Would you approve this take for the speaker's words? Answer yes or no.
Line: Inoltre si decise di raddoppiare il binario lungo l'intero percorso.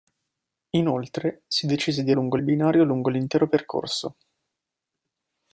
no